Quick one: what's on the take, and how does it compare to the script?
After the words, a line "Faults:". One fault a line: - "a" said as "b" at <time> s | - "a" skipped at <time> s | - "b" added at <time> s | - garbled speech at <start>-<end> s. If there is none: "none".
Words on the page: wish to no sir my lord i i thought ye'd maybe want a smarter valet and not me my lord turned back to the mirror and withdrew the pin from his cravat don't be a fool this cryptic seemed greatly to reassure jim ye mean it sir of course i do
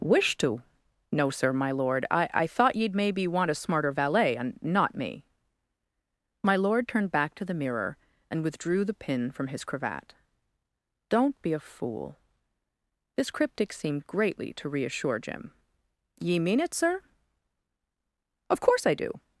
wish to no sir my lord i i thought ye'd maybe want a smarter valet and not me my lord turned back to the mirror and withdrew the pin from his cravat don't be a fool this cryptic seemed greatly to reassure jim ye mean it sir of course i do
Faults:
none